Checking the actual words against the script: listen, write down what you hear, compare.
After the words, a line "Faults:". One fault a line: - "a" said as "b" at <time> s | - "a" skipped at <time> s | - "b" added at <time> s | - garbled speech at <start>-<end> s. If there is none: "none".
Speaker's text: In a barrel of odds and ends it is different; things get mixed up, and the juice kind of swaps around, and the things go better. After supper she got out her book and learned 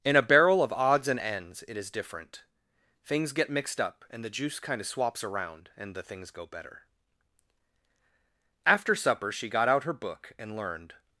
In a barrel of odds and ends it is different; things get mixed up, and the juice kind of swaps around, and the things go better. After supper she got out her book and learned
Faults:
none